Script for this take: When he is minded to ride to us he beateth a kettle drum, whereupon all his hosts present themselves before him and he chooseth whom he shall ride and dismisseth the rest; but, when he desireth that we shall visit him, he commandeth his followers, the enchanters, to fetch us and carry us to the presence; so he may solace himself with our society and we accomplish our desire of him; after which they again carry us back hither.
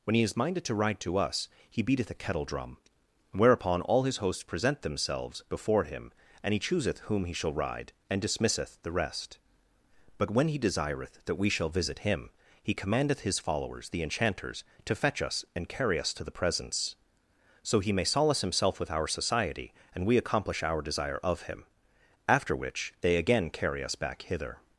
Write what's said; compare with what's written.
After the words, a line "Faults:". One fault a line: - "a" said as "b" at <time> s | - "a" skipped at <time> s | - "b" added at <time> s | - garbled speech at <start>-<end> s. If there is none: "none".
When he is minded to ride to us he beateth a kettle drum, whereupon all his hosts present themselves before him and he chooseth whom he shall ride and dismisseth the rest; but, when he desireth that we shall visit him, he commandeth his followers, the enchanters, to fetch us and carry us to the presence; so he may solace himself with our society and we accomplish our desire of him; after which they again carry us back hither.
Faults:
none